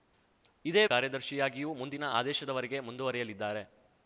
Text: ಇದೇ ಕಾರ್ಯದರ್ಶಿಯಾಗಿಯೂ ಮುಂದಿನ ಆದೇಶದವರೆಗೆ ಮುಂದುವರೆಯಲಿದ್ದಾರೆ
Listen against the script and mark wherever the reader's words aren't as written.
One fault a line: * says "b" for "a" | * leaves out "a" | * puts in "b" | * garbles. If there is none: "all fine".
all fine